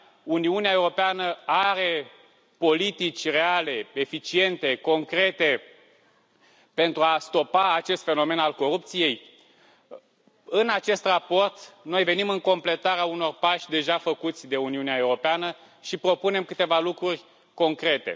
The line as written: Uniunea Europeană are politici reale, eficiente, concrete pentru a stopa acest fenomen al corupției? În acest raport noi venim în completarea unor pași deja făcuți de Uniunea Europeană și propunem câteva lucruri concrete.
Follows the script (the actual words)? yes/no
yes